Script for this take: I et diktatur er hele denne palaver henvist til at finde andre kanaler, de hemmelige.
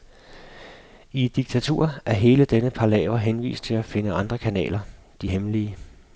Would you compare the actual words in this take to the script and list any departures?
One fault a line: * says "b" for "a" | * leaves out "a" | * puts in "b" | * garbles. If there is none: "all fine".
all fine